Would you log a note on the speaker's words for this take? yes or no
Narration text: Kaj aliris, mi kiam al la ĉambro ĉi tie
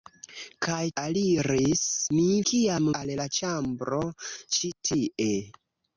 no